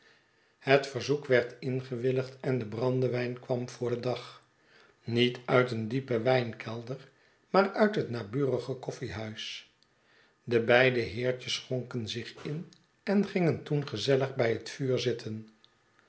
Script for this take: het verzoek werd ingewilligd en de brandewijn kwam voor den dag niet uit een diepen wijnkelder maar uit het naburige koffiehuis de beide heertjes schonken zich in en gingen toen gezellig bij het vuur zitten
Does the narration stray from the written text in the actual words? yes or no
no